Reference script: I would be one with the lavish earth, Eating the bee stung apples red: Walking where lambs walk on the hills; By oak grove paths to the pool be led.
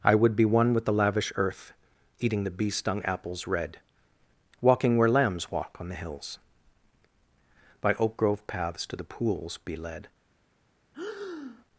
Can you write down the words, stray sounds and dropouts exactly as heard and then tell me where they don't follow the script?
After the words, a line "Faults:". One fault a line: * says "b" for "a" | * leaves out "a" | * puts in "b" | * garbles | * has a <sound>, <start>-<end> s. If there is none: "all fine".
I would be one with the lavish earth, Eating the bee stung apples red: Walking where lambs walk on the hills; By oak grove paths to the pools be led.
Faults:
* says "pools" for "pool"
* has a breath, 10.9-11.7 s